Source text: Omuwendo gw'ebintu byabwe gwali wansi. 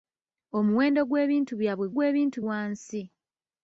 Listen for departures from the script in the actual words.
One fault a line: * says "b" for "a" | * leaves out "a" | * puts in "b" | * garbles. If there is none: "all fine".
* says "gw'ebintu" for "gwali"